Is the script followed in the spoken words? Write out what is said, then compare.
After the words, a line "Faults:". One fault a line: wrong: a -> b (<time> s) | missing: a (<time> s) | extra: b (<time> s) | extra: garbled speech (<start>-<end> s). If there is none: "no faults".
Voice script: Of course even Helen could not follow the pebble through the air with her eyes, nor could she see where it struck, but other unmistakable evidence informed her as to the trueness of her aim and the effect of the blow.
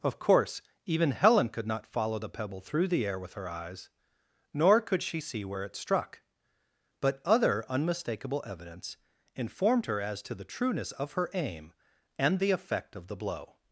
Of course even Helen could not follow the pebble through the air with her eyes, nor could she see where it struck, but other unmistakable evidence informed her as to the trueness of her aim and the effect of the blow.
Faults:
no faults